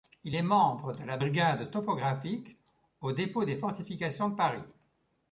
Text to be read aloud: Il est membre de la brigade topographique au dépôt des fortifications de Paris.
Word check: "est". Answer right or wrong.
right